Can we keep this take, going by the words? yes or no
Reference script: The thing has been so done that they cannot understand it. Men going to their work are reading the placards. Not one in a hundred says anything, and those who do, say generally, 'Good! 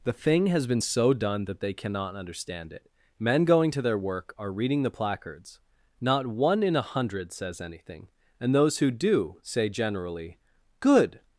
yes